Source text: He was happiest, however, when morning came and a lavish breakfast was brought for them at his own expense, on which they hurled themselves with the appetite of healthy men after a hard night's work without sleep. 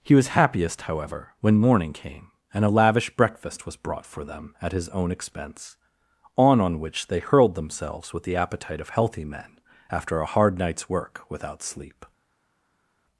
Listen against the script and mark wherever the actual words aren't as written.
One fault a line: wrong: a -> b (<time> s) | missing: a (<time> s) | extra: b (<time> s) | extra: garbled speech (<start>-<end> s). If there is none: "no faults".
extra: on (6.6 s)